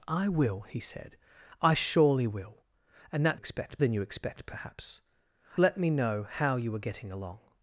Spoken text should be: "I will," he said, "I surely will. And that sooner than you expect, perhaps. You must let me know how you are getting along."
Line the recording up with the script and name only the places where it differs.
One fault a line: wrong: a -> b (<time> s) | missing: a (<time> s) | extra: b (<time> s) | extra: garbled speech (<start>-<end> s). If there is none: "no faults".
wrong: sooner -> expect (3.3 s)
missing: You must (5.0 s)